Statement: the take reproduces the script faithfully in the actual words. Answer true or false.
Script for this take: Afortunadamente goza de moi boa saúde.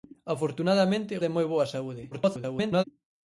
false